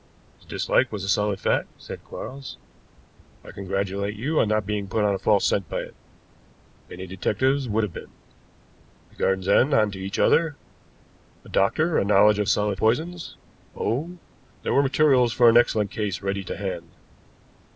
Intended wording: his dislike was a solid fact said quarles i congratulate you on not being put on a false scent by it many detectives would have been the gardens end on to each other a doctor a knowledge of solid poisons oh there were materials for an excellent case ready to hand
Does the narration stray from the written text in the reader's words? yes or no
no